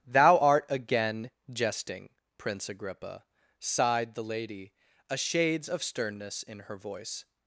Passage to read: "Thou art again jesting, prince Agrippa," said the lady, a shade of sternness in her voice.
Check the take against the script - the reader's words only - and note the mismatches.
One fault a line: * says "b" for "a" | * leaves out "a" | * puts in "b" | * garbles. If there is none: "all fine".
* says "sighed" for "said"
* says "shades" for "shade"